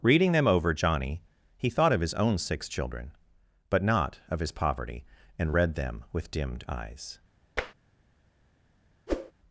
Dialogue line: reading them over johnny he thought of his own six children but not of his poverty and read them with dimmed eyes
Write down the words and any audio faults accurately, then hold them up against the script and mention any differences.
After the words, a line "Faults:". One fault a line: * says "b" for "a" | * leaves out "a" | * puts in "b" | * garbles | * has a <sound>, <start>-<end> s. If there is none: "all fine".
reading them over johnny he thought of his own six children but not of his poverty and read them with dimmed eyes
Faults:
* has a tap, 7.6-7.7 s
* has a whoosh, 9.1-9.3 s